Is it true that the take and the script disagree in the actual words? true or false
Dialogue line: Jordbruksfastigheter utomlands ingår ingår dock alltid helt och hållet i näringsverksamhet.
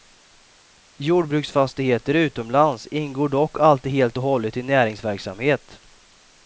true